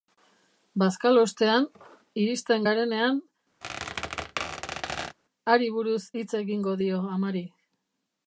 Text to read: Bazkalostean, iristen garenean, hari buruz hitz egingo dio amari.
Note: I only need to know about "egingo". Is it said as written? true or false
true